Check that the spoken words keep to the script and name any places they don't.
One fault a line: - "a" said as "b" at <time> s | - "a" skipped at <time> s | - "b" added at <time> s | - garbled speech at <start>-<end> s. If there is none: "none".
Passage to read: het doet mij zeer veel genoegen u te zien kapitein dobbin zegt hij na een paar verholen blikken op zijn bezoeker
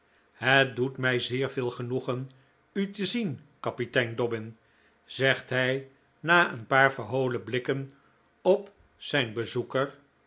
none